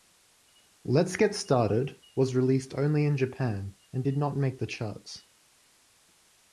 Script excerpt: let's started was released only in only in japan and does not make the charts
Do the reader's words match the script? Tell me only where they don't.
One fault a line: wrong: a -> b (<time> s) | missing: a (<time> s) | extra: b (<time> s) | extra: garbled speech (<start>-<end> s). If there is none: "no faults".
extra: get (1.1 s)
missing: only in (3.2 s)
wrong: does -> did (4.0 s)